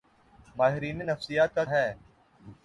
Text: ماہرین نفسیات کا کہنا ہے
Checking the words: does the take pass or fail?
fail